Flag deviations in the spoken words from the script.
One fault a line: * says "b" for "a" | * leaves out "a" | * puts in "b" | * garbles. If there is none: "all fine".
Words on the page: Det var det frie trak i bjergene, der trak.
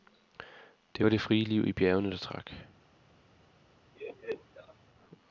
* says "liv" for "trak"